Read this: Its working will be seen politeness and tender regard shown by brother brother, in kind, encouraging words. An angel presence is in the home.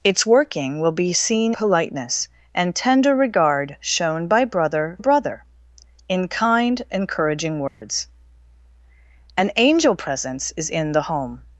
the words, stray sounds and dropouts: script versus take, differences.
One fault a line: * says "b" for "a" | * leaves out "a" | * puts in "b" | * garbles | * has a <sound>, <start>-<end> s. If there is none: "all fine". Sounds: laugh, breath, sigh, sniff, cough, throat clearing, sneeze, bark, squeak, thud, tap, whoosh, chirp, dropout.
* has a dropout, 7.7-7.8 s